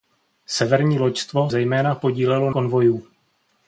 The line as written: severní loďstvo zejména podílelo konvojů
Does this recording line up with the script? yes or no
yes